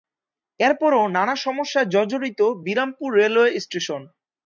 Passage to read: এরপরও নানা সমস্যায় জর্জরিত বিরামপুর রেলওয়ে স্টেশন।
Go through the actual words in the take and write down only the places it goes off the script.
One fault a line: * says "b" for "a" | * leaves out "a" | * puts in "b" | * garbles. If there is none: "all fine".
all fine